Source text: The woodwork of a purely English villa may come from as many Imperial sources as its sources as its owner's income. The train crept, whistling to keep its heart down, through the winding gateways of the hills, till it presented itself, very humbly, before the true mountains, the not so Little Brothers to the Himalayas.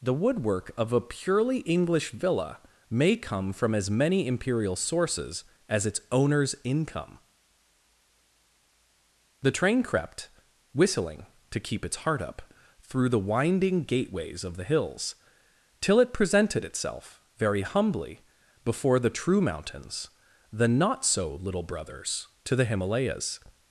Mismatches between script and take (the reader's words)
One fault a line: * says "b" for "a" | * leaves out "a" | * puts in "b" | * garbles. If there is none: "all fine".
* leaves out "sources as its"
* says "up" for "down"